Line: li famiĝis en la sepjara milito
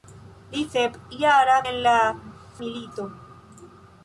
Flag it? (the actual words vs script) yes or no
yes